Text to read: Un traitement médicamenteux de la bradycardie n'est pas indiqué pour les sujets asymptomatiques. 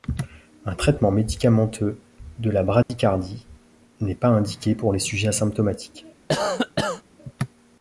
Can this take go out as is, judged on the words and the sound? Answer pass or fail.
fail